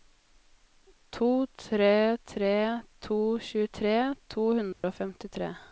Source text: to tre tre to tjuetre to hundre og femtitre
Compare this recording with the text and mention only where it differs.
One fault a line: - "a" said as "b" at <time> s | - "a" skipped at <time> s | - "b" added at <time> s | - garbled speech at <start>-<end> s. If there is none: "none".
none